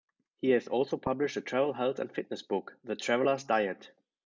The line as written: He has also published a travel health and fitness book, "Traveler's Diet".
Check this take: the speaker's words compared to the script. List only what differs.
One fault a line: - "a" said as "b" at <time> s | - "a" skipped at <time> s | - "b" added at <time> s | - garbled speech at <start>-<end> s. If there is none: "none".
- "The" added at 2.8 s